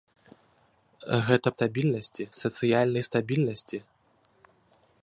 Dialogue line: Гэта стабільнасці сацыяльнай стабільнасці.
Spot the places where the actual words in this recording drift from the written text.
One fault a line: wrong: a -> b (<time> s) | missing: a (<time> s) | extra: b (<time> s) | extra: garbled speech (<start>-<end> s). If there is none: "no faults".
no faults